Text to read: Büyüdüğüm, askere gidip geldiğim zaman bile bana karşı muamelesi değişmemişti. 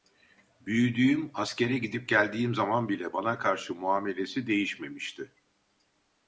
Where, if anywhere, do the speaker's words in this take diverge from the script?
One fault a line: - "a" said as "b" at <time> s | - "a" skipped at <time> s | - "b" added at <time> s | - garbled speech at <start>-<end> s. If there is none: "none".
none